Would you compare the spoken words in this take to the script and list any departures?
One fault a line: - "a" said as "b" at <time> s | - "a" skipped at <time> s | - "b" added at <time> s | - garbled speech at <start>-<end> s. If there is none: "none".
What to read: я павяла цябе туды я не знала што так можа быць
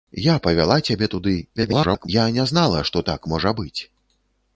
- garbled speech at 1.6-2.1 s